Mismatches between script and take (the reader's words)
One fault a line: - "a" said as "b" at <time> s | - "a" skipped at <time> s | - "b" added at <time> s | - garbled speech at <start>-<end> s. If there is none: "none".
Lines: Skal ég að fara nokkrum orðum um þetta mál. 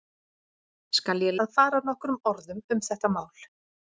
none